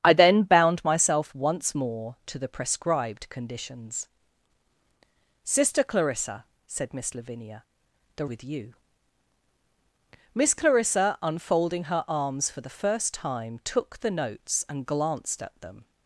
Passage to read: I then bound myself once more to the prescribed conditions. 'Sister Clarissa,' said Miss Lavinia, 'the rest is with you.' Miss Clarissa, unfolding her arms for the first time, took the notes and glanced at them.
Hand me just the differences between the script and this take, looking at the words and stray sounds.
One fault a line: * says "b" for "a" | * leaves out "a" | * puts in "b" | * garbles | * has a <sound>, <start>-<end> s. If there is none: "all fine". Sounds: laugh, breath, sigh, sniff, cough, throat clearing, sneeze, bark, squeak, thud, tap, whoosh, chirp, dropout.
* leaves out "rest is"